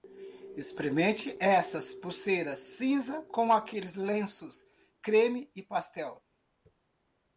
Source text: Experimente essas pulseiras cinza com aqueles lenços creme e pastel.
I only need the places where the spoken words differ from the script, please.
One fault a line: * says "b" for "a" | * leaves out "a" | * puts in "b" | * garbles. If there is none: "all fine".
all fine